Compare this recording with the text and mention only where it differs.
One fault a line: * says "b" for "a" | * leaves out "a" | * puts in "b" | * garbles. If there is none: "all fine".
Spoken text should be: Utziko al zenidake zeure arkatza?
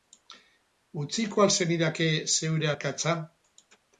all fine